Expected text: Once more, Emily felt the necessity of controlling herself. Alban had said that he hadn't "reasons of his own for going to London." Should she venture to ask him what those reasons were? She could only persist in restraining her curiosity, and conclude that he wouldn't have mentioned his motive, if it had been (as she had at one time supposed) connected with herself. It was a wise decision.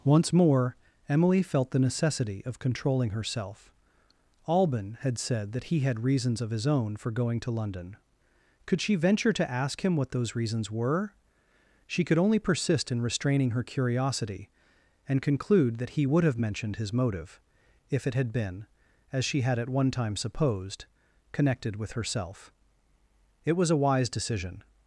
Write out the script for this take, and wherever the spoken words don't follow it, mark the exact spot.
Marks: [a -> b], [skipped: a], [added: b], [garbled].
Once more, Emily felt the necessity of controlling herself. Alban had said that he [hadn't -> had] "reasons of his own for going to London." [Should -> Could] she venture to ask him what those reasons were? She could only persist in restraining her curiosity, and conclude that he [wouldn't -> would] have mentioned his motive, if it had been (as she had at one time supposed) connected with herself. It was a wise decision.